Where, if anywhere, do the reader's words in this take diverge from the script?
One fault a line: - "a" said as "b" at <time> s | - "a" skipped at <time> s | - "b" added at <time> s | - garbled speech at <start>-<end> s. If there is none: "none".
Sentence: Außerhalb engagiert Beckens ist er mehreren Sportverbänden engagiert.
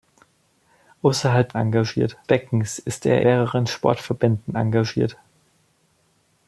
none